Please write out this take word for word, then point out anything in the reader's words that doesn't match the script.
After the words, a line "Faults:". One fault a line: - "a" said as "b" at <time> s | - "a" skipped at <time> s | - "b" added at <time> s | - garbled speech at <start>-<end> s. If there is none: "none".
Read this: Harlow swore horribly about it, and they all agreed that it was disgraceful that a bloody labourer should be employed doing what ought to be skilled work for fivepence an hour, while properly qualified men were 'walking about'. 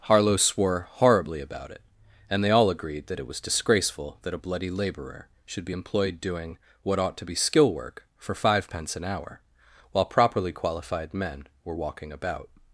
Harlow swore horribly about it, and they all agreed that it was disgraceful that a bloody labourer should be employed doing what ought to be skill work for fivepence an hour, while properly qualified men were 'walking about'.
Faults:
- "skilled" said as "skill" at 7.3 s